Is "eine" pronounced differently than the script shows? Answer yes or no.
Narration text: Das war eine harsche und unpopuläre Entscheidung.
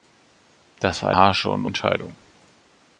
yes